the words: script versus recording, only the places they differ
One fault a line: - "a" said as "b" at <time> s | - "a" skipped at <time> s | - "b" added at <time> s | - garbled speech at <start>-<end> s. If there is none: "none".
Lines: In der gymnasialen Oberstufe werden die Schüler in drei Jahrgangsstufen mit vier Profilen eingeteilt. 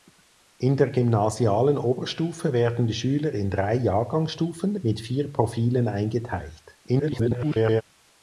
- garbled speech at 6.9-7.8 s